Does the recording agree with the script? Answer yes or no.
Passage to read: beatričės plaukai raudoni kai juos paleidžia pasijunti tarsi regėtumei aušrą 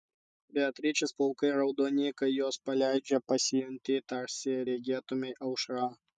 yes